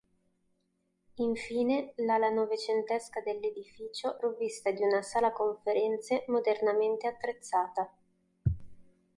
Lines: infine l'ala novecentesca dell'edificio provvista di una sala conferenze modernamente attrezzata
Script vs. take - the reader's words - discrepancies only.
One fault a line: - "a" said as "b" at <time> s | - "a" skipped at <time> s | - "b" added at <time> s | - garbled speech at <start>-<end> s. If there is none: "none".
none